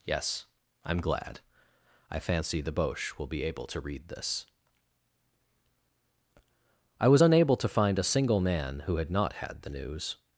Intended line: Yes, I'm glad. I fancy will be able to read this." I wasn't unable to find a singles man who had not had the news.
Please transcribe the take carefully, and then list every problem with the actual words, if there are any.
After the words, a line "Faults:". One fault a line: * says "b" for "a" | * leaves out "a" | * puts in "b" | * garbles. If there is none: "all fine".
Yes, I'm glad. I fancy the Boche will be able to read this." I was unable to find a single man who had not had the news.
Faults:
* puts in "the Boche"
* says "was" for "wasn't"
* says "single" for "singles"